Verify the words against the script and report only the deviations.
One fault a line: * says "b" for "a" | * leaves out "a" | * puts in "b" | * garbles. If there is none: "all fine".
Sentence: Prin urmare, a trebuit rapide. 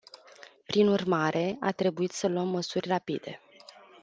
* puts in "să luăm măsuri"